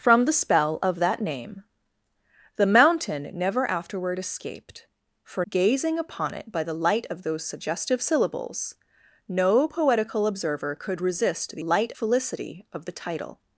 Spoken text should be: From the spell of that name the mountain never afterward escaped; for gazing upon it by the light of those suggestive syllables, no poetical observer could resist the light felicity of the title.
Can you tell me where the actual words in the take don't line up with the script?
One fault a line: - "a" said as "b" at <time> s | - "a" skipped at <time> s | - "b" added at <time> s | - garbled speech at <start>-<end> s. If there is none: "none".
none